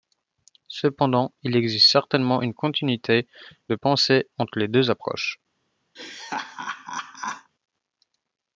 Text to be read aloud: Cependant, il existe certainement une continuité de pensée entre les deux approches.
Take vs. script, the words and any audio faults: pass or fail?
fail